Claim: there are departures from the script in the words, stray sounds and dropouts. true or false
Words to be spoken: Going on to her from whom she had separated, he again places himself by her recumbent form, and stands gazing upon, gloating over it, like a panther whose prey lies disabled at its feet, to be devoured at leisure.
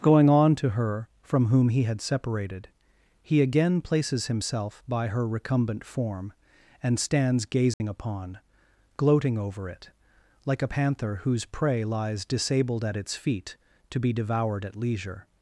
true